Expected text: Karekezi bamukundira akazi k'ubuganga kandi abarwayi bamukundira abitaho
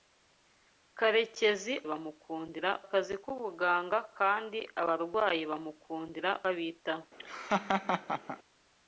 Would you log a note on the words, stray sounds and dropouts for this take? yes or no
yes